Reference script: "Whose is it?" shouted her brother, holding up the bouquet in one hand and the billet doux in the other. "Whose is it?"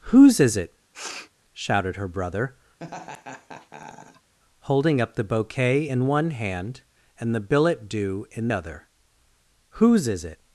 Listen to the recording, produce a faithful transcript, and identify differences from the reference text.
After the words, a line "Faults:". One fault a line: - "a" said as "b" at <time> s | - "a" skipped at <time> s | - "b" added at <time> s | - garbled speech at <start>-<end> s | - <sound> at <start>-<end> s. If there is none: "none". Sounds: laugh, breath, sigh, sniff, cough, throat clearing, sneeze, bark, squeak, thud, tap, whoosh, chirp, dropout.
"Whose is it?" shouted her brother, holding up the bouquet in one hand and the billet doux in other. "Whose is it?"
Faults:
- sniff at 0.9-1.3 s
- laugh at 2.8-4.3 s
- "the" skipped at 8.5 s